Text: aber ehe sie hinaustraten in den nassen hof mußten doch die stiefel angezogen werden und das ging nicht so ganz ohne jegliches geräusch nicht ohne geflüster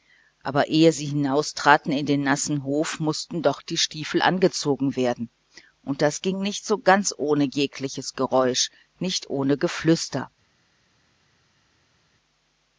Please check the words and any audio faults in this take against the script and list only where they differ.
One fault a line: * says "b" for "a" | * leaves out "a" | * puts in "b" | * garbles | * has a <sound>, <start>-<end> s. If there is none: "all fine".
all fine